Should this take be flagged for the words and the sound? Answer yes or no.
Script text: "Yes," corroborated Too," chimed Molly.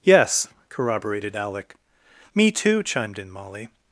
yes